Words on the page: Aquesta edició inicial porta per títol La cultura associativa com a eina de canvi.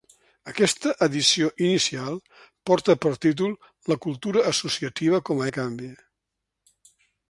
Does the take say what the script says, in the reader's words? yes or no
no